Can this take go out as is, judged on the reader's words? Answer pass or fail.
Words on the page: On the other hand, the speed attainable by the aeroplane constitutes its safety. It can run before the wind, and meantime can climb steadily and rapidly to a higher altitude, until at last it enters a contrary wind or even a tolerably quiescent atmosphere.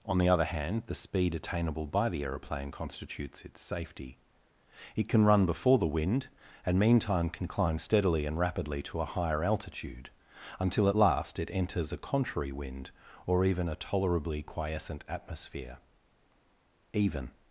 fail